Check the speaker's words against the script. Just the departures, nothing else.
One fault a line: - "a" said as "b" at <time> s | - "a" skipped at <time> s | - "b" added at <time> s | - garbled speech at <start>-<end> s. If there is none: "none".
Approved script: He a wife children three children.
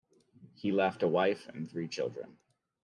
- "left" added at 0.7 s
- "children" said as "and" at 1.5 s